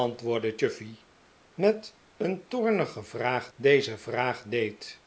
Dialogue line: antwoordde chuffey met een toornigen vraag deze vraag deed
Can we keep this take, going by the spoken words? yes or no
yes